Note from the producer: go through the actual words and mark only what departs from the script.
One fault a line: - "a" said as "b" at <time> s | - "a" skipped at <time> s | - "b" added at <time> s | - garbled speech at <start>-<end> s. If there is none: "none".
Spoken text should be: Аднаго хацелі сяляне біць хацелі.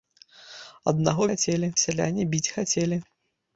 none